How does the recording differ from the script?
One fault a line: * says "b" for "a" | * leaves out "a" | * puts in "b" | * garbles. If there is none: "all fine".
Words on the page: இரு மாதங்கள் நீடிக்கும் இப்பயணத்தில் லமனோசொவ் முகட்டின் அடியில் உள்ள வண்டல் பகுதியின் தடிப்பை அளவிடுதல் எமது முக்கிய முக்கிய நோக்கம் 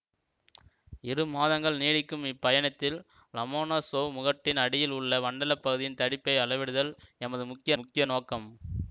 all fine